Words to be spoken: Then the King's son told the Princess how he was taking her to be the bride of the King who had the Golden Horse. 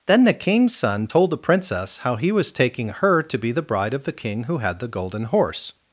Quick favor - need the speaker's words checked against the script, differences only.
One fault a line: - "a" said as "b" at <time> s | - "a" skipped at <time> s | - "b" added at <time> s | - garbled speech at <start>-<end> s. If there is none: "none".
none